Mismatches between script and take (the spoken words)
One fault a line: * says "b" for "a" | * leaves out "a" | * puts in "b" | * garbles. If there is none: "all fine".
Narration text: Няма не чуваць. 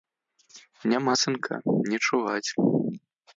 * puts in "сынка"